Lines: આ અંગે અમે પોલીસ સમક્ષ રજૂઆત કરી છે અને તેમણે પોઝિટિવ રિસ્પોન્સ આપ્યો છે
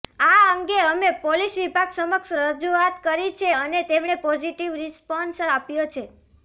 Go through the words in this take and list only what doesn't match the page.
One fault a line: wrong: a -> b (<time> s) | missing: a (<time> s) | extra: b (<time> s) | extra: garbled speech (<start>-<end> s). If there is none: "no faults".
extra: વિભાગ (1.6 s)